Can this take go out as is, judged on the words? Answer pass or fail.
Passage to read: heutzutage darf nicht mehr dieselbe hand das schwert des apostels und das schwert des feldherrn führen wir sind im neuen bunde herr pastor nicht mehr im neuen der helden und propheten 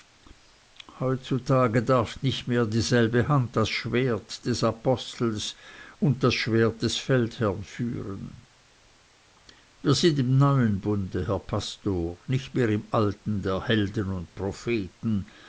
fail